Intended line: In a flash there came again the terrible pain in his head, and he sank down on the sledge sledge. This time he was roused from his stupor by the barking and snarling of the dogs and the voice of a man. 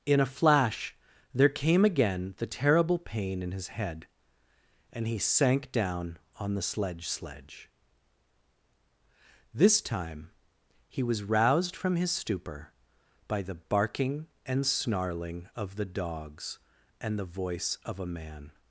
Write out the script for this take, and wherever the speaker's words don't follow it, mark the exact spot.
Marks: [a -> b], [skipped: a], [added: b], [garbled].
In a flash there came again the terrible pain in his head, and he sank down on the sledge sledge. This time he was roused from his stupor by the barking and snarling of the dogs and the voice of a man.